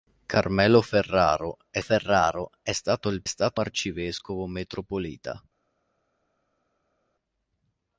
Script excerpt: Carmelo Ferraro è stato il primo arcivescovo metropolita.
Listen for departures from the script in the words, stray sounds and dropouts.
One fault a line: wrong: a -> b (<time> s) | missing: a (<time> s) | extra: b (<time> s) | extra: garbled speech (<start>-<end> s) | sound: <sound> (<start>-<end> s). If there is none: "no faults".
extra: Ferraro è (1.8 s)
wrong: primo -> stato (3.2 s)